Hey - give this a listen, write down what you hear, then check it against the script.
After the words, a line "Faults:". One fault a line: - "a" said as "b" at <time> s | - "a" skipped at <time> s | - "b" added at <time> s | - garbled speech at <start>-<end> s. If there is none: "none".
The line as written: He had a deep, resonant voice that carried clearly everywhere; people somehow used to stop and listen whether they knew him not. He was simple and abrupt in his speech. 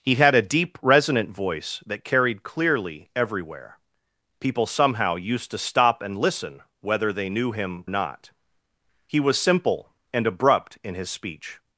He had a deep, resonant voice that carried clearly everywhere; people somehow used to stop and listen whether they knew him not. He was simple and abrupt in his speech.
Faults:
none